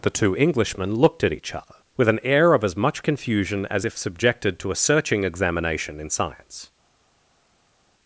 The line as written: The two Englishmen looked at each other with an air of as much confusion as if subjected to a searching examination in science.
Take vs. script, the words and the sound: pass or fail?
pass